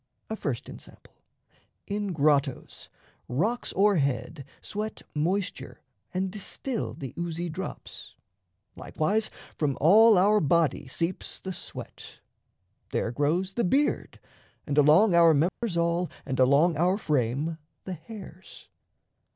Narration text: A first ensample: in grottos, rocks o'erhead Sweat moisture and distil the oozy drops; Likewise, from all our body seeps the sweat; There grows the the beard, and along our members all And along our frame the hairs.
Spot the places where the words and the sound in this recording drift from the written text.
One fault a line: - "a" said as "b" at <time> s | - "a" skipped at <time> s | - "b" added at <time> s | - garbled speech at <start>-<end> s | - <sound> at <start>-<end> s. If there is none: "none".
- "the" skipped at 13.6 s
- dropout at 15.5-15.6 s